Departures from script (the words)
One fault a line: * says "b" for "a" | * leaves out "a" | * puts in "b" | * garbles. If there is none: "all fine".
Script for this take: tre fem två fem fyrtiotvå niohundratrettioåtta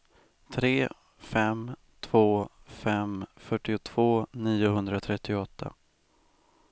all fine